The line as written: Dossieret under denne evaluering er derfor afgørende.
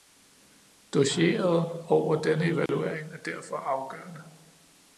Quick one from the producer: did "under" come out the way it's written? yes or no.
no